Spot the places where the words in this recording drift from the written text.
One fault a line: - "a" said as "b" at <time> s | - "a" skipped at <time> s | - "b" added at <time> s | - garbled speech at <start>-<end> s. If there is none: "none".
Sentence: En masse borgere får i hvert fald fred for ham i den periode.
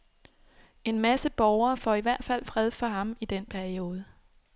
none